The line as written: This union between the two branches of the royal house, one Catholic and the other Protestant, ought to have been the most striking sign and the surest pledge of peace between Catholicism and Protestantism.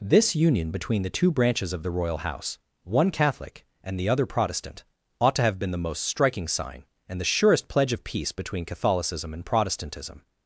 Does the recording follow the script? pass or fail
pass